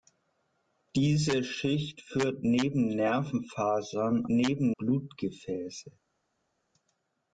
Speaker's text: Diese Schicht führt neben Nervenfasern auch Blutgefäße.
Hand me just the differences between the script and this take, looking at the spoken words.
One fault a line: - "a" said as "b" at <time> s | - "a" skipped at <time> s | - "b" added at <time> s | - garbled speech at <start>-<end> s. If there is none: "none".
- "auch" said as "neben" at 4.3 s